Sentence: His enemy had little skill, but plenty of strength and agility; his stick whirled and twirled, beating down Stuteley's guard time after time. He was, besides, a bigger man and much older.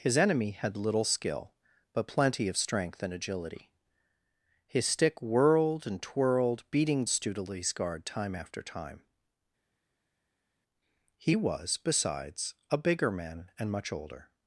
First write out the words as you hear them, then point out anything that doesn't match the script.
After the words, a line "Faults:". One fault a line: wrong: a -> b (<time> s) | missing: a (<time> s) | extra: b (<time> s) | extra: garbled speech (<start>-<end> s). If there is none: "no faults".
His enemy had little skill, but plenty of strength and agility; his stick whirled and twirled, beating Stuteley's guard time after time. He was, besides, a bigger man and much older.
Faults:
missing: down (7.0 s)